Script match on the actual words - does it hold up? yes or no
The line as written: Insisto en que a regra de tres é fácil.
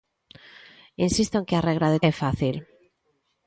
no